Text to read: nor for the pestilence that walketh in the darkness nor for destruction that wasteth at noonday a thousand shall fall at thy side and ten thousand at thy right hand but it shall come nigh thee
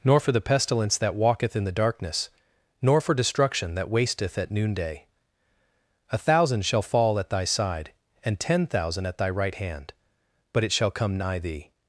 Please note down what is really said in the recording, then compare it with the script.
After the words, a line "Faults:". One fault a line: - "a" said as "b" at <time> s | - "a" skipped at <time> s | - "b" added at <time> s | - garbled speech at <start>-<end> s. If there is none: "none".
nor for the pestilence that walketh in the darkness nor for destruction that wasteth at noonday a thousand shall fall at thy side and ten thousand at thy right hand but it shall come nigh thee
Faults:
none